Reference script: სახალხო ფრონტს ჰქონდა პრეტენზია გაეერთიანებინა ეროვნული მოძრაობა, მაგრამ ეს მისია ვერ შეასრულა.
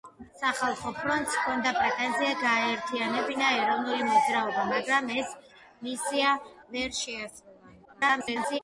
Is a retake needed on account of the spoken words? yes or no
yes